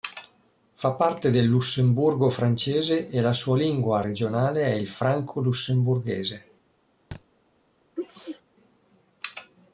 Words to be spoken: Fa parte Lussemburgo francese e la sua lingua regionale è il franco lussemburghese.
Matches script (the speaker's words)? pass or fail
fail